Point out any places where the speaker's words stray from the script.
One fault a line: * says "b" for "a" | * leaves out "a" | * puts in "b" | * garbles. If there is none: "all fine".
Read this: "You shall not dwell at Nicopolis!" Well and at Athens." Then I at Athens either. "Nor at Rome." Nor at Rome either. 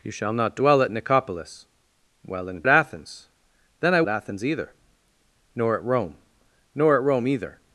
all fine